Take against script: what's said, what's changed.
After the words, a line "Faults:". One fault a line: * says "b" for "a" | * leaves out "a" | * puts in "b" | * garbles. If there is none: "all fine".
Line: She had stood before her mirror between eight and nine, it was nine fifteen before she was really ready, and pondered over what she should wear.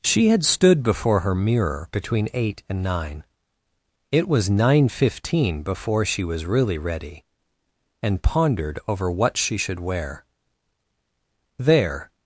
She had stood before her mirror between eight and nine, it was nine fifteen before she was really ready, and pondered over what she should wear. There
Faults:
* puts in "There"